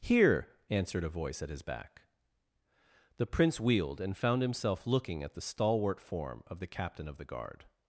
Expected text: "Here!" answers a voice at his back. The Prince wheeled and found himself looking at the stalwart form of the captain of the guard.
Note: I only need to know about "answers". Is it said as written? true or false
false